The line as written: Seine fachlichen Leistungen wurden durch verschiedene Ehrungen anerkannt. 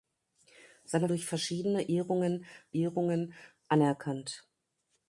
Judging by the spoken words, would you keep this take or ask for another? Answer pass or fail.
fail